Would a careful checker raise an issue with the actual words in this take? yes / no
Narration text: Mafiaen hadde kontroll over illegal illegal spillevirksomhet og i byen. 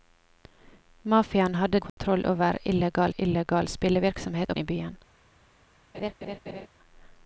no